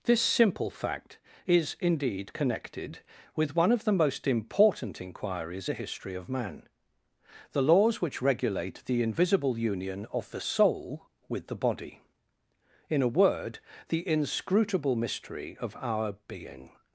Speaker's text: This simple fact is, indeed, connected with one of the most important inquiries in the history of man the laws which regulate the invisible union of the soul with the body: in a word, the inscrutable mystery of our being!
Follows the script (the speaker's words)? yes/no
no